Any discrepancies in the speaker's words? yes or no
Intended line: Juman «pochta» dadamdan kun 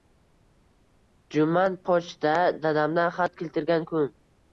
yes